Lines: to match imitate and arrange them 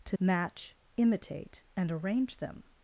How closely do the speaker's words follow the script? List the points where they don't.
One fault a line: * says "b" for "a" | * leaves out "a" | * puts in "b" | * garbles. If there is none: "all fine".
all fine